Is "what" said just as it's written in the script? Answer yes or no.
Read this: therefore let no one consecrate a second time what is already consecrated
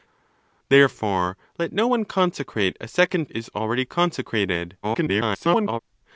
no